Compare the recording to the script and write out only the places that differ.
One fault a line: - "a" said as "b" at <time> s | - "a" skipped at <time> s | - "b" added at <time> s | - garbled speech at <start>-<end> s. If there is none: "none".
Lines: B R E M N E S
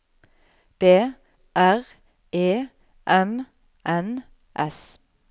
- "E" skipped at 4.2 s